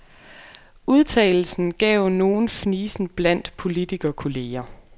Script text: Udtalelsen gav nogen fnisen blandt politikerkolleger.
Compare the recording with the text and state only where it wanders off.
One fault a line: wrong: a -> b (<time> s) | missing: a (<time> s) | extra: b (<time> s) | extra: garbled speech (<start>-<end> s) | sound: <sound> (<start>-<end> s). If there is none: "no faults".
no faults